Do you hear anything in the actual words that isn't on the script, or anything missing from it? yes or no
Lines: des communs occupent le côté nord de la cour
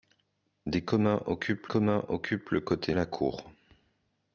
yes